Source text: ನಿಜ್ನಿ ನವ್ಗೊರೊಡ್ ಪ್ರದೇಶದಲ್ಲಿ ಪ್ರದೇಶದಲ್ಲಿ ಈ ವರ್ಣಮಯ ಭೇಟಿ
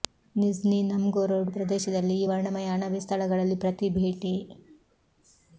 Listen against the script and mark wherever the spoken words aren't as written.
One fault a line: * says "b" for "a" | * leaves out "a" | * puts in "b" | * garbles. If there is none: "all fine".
* leaves out "ಪ್ರದೇಶದಲ್ಲಿ"
* puts in "ಅಣಬೆ ಸ್ಥಳಗಳಲ್ಲಿ ಪ್ರತಿ"